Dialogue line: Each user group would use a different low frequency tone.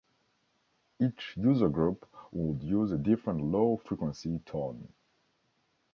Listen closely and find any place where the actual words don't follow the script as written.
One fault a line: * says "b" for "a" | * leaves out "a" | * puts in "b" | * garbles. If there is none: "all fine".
all fine